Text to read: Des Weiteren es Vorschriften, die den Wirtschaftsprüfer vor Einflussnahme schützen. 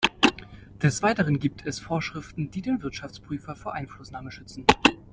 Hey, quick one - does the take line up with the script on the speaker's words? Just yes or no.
no